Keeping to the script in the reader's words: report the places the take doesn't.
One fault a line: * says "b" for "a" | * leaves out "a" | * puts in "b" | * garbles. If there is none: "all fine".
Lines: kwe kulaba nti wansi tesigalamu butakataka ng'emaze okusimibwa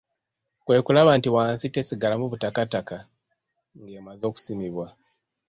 all fine